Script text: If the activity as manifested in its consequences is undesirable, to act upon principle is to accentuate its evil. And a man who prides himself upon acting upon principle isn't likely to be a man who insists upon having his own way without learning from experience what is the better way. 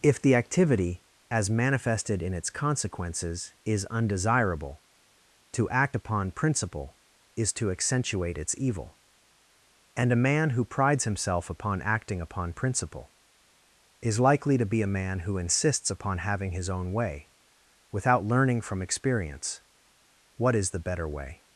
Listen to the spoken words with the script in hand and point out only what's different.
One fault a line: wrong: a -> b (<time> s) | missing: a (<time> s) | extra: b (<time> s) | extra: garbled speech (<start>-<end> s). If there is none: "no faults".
wrong: isn't -> is (14.0 s)